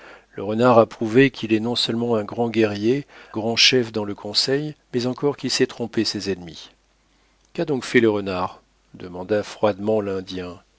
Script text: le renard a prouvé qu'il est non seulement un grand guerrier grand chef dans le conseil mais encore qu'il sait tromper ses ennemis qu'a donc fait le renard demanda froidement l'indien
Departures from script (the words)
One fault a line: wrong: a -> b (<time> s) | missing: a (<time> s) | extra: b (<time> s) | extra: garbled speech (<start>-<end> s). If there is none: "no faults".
no faults